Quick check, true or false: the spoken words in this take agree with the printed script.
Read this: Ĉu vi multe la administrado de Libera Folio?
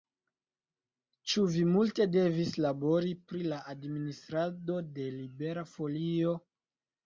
false